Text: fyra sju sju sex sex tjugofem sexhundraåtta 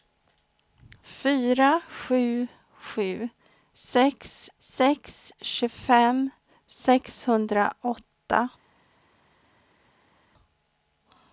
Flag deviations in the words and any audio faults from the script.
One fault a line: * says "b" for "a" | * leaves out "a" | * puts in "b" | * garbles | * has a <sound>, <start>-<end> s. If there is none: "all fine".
all fine